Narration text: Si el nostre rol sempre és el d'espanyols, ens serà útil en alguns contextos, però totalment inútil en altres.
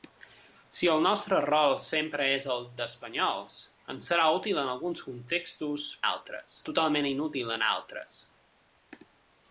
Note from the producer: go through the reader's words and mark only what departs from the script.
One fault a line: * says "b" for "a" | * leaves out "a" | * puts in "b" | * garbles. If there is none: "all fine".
* says "altres" for "però"